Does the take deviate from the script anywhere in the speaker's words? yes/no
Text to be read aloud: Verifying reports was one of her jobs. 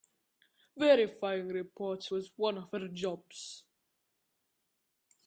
no